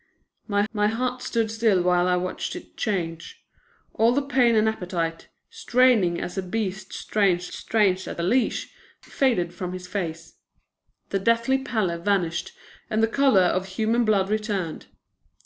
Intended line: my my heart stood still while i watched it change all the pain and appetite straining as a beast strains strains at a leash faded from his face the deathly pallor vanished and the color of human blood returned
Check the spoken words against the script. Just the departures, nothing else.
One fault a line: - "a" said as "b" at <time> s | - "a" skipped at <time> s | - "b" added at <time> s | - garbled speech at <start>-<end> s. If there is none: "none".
none